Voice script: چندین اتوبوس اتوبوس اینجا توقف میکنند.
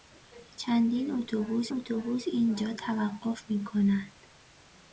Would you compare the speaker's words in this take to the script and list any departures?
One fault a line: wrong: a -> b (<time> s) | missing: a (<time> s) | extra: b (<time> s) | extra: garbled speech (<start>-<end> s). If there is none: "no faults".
no faults